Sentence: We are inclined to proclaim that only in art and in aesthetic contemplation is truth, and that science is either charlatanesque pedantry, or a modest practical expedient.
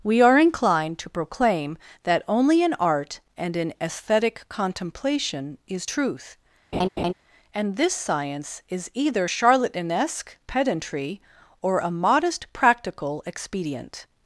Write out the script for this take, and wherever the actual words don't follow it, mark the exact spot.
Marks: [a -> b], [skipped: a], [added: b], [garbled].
We are inclined to proclaim that only in art and in aesthetic contemplation is truth, and [that -> this] science is either charlatanesque pedantry, or a modest practical expedient.